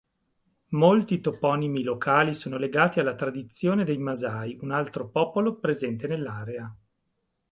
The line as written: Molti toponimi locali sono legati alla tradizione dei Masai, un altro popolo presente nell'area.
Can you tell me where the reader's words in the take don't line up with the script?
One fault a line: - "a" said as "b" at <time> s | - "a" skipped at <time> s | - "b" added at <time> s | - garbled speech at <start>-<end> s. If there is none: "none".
none